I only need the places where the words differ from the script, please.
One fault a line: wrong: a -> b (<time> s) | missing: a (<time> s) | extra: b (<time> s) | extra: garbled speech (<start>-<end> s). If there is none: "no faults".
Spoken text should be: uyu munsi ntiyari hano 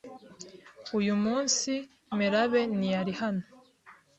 extra: melabe (2.2 s)